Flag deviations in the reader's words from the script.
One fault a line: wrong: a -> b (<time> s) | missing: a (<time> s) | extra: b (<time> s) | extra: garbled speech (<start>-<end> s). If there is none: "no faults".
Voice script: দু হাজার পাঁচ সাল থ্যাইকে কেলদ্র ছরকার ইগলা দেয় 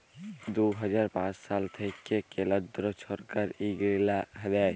no faults